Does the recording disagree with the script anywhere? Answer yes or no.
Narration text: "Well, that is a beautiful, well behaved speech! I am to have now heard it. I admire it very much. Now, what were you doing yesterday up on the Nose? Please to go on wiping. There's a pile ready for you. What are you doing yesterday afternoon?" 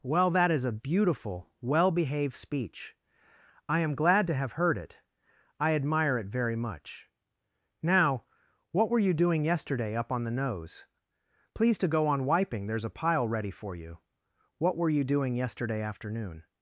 yes